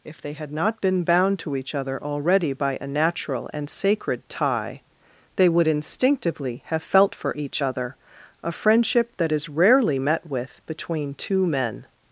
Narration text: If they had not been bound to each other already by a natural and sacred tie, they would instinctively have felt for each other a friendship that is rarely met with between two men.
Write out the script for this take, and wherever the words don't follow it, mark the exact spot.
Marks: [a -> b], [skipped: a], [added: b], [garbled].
If they had not been bound to each other already by a natural and sacred tie, they would instinctively have felt for each other a friendship that is rarely met with between two men.